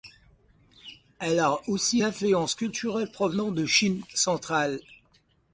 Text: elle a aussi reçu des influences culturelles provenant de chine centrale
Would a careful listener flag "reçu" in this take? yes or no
yes